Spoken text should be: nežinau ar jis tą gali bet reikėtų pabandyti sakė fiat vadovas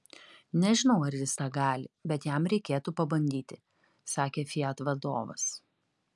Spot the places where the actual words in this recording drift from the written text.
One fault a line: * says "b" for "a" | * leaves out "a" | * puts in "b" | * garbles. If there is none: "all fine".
* puts in "jam"